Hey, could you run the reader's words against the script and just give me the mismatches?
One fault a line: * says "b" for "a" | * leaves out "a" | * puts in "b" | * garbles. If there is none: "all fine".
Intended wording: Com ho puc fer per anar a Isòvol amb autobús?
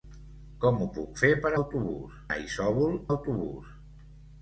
* says "autobús" for "anar"
* leaves out "amb"